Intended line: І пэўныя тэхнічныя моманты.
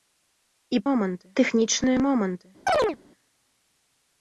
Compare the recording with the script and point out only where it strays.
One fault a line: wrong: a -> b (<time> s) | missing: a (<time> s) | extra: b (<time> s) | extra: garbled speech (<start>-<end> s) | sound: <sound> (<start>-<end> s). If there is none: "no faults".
wrong: пэўныя -> моманты (0.9 s)
sound: chirp (2.7-3.0 s)